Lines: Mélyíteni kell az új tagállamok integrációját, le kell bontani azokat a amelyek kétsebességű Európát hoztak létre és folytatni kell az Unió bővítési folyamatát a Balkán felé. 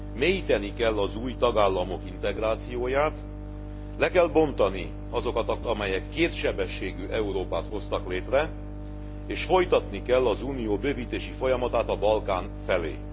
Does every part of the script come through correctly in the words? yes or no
yes